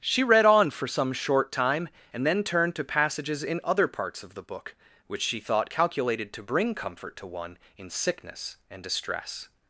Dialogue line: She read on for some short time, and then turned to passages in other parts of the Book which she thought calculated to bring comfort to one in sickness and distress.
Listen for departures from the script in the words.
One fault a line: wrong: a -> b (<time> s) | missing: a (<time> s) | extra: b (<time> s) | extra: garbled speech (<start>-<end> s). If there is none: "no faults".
no faults